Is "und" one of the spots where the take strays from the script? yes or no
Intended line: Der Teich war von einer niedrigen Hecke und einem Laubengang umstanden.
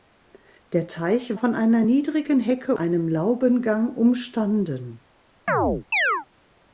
yes